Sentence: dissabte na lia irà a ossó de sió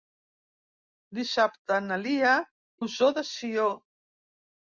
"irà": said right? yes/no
no